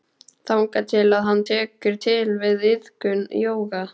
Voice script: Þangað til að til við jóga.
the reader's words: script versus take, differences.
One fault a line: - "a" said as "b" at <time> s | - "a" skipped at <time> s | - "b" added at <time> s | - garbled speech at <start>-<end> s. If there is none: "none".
- "hann tekur" added at 1.3 s
- "iðkun" added at 2.7 s